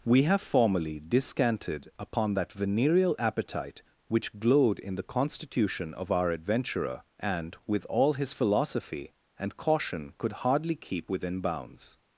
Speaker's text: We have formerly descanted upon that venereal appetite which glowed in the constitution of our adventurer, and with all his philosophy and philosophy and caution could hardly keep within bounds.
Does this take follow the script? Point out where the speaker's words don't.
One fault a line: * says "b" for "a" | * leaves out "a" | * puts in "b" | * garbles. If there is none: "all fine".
* leaves out "philosophy and"